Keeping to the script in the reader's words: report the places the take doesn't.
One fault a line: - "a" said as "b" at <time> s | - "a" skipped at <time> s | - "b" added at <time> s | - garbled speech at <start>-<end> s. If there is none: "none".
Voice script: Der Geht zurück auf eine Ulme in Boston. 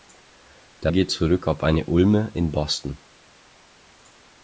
none